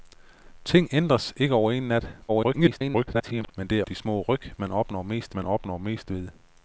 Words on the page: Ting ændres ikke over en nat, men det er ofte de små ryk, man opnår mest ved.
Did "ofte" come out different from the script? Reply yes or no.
yes